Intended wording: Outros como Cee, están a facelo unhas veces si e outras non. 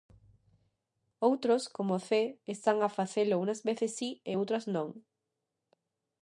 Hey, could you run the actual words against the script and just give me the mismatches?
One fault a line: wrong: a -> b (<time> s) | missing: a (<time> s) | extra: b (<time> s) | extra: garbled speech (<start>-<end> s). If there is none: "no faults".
no faults